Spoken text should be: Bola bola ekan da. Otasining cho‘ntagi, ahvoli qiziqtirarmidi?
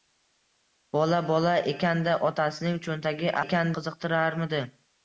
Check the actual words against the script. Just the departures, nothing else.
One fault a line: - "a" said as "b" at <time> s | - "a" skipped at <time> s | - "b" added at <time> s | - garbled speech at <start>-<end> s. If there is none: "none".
- "ahvoli" said as "ekan" at 3.4 s